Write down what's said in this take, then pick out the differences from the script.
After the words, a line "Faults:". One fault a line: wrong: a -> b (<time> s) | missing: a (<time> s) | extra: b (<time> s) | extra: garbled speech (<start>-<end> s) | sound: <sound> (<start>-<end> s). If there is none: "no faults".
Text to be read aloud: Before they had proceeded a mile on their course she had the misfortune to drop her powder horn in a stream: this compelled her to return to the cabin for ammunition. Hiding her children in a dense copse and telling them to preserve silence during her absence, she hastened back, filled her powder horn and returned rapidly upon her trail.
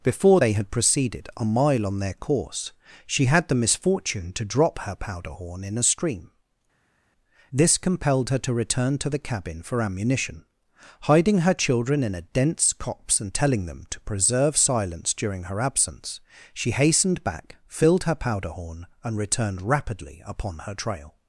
Before they had proceeded a mile on their course she had the misfortune to drop her powder horn in a stream: this compelled her to return to the cabin for ammunition. Hiding her children in a dense copse and telling them to preserve silence during her absence, she hastened back, filled her powder horn and returned rapidly upon her trail.
Faults:
no faults